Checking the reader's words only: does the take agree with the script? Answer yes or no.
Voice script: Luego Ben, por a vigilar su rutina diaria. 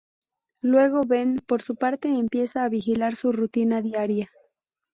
no